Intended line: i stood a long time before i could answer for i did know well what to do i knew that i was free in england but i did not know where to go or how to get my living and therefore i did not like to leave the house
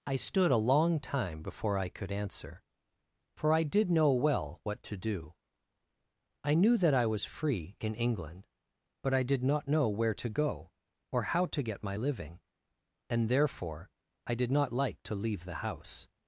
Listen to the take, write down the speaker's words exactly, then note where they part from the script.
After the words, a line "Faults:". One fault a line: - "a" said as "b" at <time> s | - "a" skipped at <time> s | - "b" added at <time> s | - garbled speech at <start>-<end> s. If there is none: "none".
i stood a long time before i could answer for i did know well what to do i knew that i was free in england but i did not know where to go or how to get my living and therefore i did not like to leave the house
Faults:
none